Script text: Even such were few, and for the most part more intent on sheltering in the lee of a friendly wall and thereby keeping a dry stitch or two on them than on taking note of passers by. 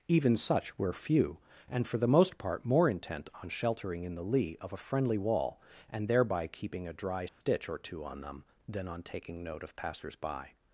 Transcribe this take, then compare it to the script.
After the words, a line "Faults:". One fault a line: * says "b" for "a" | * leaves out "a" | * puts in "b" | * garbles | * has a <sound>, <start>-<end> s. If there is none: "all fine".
Even such were few, and for the most part more intent on sheltering in the lee of a friendly wall and thereby keeping a dry stitch or two on them than on taking note of passers by.
Faults:
* has a dropout, 7.3-7.4 s